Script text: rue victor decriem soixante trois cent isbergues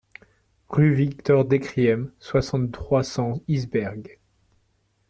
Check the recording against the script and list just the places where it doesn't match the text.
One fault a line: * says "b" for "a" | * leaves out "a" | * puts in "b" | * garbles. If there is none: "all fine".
all fine